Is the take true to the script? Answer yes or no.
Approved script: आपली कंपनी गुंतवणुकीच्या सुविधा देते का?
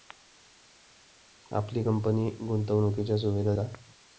no